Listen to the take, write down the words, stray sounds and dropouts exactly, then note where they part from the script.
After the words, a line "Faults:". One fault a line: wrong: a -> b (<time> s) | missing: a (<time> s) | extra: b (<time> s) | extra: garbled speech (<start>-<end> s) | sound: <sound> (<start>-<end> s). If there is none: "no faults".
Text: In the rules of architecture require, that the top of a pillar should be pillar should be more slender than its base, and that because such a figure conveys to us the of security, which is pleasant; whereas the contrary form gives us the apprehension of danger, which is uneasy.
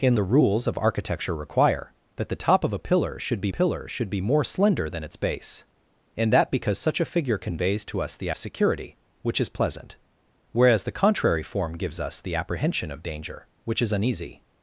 In the rules of architecture require, that the top of a pillar should be pillar should be more slender than its base, and that because such a figure conveys to us the of security, which is pleasant; whereas the contrary form gives us the apprehension of danger, which is uneasy.
Faults:
no faults